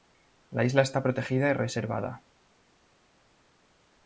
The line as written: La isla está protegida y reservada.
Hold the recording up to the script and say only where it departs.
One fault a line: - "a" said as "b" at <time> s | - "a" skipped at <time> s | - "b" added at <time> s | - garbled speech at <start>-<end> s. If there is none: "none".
none